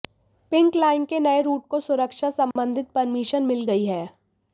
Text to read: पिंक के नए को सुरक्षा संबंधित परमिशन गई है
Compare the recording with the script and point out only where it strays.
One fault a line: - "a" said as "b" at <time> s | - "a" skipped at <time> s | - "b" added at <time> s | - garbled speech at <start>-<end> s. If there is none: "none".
- "लाइन" added at 0.8 s
- "रूट" added at 1.4 s
- "मिल" added at 3.5 s